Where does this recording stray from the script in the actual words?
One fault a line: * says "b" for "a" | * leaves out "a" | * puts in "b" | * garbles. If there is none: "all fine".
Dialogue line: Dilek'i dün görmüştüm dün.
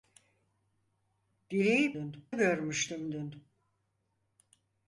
all fine